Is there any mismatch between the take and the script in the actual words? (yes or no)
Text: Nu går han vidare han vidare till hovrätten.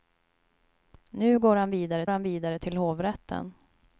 no